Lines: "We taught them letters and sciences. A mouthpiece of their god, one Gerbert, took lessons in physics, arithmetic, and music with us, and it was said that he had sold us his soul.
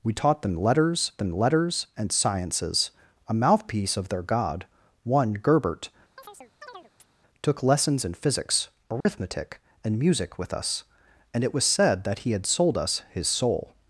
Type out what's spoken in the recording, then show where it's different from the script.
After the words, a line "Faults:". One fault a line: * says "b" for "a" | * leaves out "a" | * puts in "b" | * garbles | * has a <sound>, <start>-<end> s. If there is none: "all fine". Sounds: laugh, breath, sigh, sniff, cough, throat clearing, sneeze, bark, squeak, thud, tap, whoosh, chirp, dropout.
"We taught them letters them letters and sciences. A mouthpiece of their god, one Gerbert, took lessons in physics, arithmetic, and music with us, and it was said that he had sold us his soul.
Faults:
* puts in "them letters"
* has a chirp, 6.2-7.1 s
* has a dropout, 9.0-9.1 s